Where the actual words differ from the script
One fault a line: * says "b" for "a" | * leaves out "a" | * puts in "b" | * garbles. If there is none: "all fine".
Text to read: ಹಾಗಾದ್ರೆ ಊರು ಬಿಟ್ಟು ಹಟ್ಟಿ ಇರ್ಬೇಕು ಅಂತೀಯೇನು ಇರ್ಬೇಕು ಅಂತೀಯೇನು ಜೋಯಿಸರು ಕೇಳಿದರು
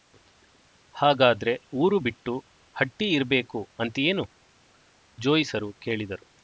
* leaves out "ಇರ್ಬೇಕು ಅಂತೀಯೇನು"